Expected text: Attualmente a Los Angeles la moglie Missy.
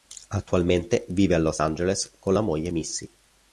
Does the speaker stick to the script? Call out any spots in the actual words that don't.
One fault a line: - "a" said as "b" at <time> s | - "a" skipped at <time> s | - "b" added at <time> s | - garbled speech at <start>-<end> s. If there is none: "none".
- "vive" added at 1.1 s
- "con" added at 2.2 s